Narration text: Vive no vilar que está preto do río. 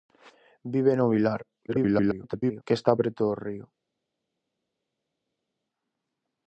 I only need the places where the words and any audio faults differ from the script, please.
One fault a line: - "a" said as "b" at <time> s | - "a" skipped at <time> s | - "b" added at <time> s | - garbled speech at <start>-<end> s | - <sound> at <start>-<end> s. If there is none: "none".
- garbled speech at 1.7-2.6 s